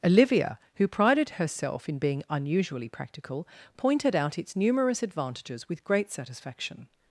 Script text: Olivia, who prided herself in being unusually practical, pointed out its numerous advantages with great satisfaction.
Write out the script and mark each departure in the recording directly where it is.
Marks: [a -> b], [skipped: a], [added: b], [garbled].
Olivia, who prided herself in being unusually practical, pointed out its numerous advantages with great satisfaction.